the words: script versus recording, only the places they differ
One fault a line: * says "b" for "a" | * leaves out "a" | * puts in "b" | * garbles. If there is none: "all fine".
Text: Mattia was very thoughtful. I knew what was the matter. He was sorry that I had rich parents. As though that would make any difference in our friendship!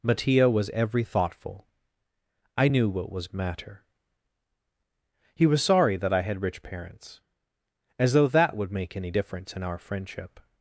* says "every" for "very"
* leaves out "the"